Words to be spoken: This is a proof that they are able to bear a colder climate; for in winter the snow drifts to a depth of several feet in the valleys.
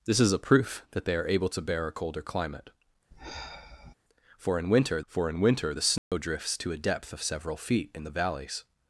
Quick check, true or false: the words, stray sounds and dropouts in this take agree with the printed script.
false